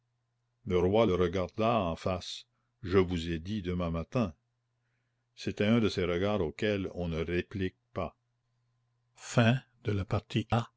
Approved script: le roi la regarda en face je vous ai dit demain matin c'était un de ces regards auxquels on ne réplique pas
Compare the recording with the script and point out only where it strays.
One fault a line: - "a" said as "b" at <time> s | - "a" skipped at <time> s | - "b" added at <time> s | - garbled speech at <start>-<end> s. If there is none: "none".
- "la" said as "le" at 1.0 s